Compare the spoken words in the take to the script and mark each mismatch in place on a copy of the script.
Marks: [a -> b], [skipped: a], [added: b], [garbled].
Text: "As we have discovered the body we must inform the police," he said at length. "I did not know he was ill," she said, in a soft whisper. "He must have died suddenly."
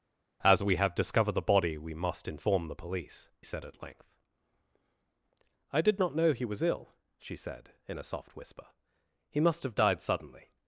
"As we have discovered the body we must inform the police," [skipped: he] said at length. "I did not know he was ill," she said, in a soft whisper. "He must have died suddenly."